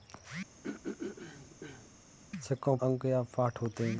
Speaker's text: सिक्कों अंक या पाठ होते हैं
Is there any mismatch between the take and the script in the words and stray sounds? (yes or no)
yes